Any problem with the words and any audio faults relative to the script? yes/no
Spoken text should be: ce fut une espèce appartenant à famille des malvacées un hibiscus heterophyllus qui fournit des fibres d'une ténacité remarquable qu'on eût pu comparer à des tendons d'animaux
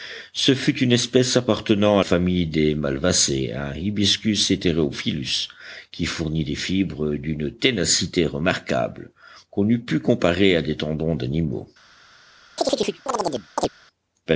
yes